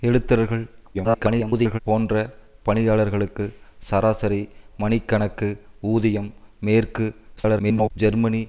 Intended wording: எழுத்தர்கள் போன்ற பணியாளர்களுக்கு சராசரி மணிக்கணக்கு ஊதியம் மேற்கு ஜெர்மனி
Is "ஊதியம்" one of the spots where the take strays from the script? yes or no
no